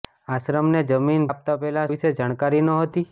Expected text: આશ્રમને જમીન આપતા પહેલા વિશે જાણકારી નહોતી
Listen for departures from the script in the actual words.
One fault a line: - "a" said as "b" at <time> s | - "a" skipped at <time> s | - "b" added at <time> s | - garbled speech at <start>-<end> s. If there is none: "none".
none